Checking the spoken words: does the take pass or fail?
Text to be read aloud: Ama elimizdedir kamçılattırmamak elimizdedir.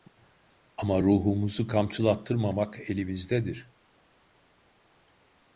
fail